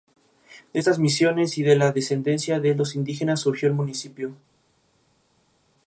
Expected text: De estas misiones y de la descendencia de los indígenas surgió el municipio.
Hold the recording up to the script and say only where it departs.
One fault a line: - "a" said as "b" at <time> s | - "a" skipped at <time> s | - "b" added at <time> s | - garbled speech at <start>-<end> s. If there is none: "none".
none